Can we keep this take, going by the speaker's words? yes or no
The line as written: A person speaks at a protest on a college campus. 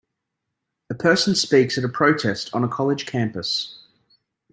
yes